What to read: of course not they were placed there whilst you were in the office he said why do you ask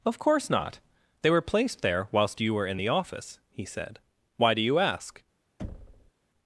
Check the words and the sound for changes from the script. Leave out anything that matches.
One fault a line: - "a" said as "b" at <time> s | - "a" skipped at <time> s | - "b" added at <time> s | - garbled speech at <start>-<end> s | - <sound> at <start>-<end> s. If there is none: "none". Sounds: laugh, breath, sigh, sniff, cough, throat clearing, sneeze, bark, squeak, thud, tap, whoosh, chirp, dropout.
- thud at 5.6-6.1 s